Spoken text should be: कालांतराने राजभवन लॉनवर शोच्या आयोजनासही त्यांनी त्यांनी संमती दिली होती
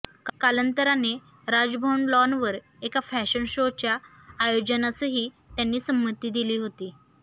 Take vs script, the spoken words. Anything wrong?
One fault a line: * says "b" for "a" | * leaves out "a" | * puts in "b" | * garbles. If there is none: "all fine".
* puts in "एका फॅशन"
* leaves out "त्यांनी"